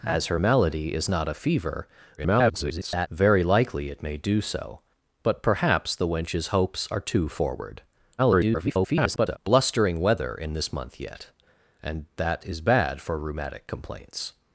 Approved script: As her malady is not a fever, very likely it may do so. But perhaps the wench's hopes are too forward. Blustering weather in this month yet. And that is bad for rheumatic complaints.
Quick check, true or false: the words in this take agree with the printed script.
false